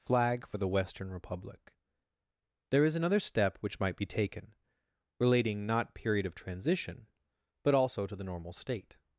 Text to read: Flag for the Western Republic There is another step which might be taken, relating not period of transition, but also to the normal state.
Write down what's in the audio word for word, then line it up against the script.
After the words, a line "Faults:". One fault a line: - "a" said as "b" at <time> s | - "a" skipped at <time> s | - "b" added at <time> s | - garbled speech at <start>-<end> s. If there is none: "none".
Flag for the Western Republic There is another step which might be taken, relating not period of transition, but also to the normal state.
Faults:
none